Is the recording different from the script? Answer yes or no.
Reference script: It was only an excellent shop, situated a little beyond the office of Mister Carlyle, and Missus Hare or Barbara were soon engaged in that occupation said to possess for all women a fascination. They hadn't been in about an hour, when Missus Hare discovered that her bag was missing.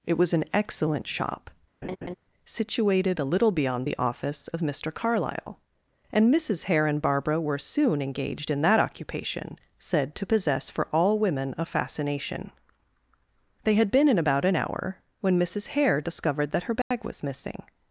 yes